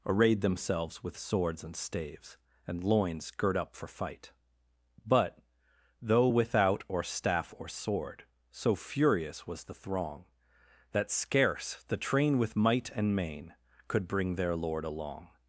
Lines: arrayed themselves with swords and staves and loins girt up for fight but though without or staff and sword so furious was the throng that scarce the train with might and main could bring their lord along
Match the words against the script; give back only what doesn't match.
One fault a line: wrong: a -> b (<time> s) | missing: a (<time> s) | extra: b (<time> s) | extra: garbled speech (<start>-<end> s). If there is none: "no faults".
wrong: and -> or (7.6 s)